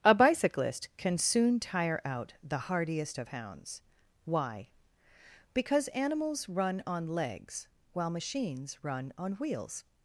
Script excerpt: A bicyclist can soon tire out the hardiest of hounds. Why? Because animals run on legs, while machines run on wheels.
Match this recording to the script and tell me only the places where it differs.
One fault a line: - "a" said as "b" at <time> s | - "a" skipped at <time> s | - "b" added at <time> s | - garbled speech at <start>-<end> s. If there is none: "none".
none